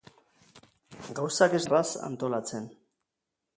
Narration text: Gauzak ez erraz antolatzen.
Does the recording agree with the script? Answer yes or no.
yes